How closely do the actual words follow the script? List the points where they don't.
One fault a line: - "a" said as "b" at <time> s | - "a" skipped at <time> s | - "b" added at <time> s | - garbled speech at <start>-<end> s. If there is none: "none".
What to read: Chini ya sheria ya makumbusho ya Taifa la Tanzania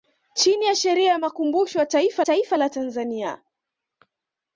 - "Taifa" added at 2.2 s